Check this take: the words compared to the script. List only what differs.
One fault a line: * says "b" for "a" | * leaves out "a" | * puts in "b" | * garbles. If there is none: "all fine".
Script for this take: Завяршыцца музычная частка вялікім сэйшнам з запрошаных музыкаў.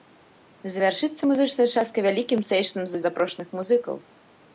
all fine